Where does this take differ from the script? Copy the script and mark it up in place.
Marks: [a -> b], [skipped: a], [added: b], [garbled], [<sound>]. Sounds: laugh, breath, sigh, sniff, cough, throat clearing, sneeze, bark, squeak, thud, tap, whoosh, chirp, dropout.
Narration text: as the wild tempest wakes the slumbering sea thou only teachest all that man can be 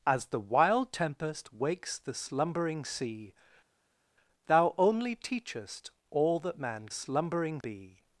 as the wild tempest wakes the slumbering sea thou only teachest all that man [can -> slumbering] be